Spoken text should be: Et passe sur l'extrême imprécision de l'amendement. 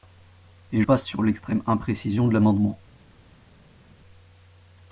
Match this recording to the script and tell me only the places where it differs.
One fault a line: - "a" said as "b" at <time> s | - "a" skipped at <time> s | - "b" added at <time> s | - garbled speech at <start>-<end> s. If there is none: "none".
none